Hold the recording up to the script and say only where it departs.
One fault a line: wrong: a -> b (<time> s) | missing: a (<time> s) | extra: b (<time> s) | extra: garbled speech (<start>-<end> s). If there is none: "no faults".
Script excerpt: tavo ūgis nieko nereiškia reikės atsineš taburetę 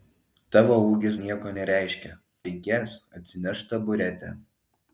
no faults